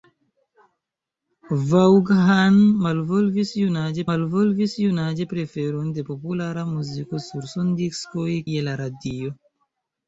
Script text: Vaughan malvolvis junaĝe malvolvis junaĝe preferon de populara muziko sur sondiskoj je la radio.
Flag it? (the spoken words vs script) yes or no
no